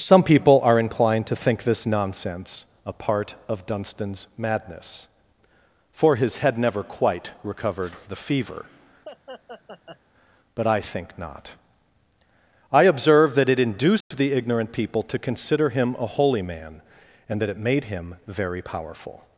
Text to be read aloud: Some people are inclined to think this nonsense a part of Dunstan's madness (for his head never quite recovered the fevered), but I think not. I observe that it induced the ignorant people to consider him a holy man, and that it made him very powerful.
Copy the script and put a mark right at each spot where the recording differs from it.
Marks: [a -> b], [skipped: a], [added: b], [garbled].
Some people are inclined to think this nonsense a part of Dunstan's madness (for his head never quite recovered the [fevered), -> fever] but I think not. I observe that it induced the ignorant people to consider him a holy man, and that it made him very powerful.